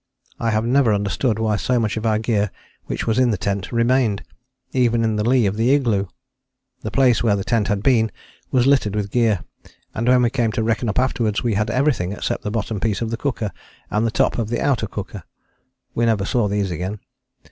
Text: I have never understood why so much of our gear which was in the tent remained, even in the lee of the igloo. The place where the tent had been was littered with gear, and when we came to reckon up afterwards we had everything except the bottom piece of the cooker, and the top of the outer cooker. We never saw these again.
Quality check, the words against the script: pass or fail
pass